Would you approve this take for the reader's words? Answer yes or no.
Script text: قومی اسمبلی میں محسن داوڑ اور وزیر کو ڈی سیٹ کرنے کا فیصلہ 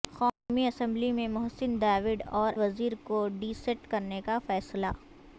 yes